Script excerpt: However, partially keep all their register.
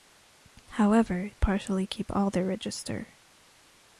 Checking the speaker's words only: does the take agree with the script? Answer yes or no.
yes